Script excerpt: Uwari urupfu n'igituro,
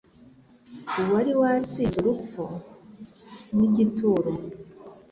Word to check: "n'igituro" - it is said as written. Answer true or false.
true